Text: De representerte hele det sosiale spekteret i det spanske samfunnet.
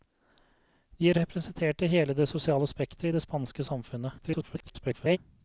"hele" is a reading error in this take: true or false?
false